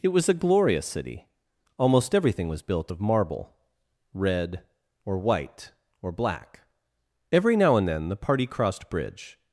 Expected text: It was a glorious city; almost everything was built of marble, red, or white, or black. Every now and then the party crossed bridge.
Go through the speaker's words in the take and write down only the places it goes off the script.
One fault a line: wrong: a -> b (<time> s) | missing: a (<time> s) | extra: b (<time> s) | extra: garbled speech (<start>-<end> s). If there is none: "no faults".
no faults